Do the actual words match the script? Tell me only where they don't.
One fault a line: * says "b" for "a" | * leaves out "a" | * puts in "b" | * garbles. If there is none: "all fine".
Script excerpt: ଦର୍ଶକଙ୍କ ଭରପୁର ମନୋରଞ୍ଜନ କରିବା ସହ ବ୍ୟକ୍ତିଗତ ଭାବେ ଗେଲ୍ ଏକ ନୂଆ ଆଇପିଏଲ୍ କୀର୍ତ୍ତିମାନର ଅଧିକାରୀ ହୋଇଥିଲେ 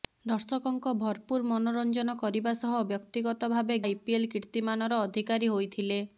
* leaves out "ଗେଲ୍ ଏକ ନୂଆ"